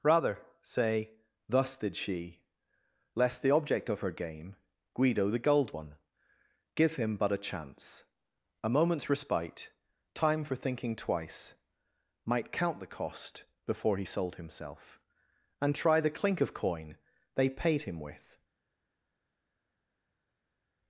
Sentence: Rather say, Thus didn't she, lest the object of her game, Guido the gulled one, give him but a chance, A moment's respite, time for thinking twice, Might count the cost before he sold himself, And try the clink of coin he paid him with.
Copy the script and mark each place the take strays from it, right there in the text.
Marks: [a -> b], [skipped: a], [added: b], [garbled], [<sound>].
Rather say, Thus [didn't -> did] she, lest the object of her game, Guido the gulled one, give him but a chance, A moment's respite, time for thinking twice, Might count the cost before he sold himself, And try the clink of coin [he -> they] paid him with.